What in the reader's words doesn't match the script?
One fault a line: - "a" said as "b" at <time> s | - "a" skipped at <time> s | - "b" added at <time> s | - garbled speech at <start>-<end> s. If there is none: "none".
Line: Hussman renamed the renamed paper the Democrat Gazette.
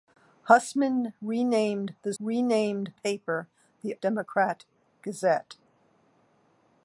none